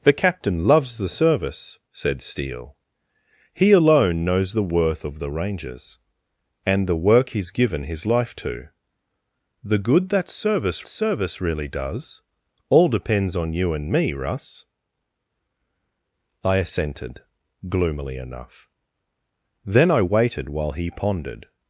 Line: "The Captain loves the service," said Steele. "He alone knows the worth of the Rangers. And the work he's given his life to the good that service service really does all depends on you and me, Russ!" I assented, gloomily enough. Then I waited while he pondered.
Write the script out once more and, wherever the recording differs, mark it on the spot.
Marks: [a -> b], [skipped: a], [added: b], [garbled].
"The Captain loves the service," said Steele. "He alone knows the worth of the Rangers. And the work he's given his life to the good that service service really does all depends on you and me, Russ!" I assented, gloomily enough. Then I waited while he pondered.